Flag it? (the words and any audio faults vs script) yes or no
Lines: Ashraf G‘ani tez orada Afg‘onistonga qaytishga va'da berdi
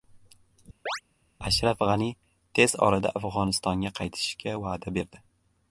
yes